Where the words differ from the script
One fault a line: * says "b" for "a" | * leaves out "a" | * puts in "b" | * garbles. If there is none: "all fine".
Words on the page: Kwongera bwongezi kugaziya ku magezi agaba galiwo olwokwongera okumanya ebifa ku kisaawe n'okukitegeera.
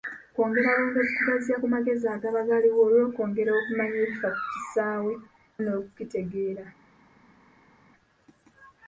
all fine